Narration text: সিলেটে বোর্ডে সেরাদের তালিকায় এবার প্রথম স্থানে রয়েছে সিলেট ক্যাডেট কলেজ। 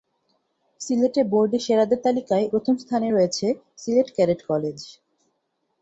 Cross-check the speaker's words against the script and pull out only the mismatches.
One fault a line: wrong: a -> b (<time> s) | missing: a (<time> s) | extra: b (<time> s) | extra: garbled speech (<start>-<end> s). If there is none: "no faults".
missing: এবার (2.5 s)